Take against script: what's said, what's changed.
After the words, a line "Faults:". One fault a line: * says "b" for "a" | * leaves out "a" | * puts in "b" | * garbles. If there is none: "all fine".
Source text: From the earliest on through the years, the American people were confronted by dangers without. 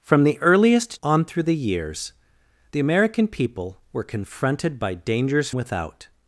From the earliest on through the years, the American people were confronted by dangers without.
Faults:
all fine